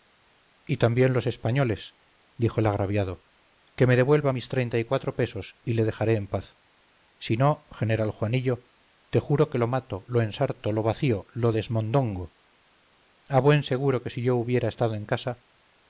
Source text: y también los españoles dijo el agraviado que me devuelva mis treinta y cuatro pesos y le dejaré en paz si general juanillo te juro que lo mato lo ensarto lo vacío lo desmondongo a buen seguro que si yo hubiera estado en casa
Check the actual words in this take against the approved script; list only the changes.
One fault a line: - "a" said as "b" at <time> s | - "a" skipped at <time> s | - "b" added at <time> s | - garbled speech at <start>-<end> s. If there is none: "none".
- "no" added at 7.4 s